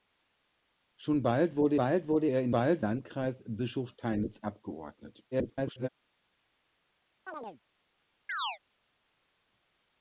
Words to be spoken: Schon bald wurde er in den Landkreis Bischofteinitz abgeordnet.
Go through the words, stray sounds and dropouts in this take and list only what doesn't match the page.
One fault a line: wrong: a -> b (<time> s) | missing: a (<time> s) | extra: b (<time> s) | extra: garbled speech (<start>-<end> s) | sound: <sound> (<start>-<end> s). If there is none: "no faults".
extra: bald wurde (1.7 s)
wrong: den -> bald (2.5 s)
extra: garbled speech (5.3-5.9 s)
sound: chirp (7.3-7.6 s)
sound: chirp (8.3-8.6 s)